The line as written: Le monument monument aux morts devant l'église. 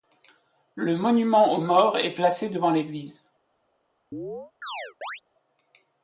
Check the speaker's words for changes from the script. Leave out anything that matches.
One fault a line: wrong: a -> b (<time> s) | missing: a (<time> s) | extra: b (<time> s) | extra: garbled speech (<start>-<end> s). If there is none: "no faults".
missing: monument (1.5 s)
extra: est placé (2.0 s)